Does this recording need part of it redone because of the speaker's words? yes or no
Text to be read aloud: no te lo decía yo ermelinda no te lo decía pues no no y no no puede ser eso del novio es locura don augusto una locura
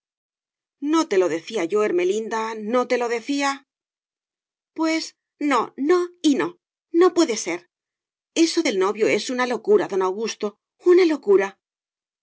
yes